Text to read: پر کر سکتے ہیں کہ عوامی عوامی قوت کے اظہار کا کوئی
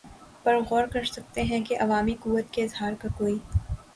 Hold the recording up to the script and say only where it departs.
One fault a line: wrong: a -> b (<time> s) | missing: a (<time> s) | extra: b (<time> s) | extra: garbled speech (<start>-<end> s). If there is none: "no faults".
extra: غور (0.6 s)
missing: عوامی (2.1 s)